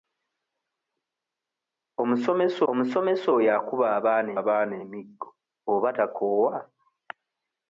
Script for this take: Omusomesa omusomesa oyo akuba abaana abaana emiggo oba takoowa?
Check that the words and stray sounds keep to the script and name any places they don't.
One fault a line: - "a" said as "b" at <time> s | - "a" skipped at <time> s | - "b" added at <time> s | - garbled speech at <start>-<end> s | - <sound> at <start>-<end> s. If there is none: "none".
none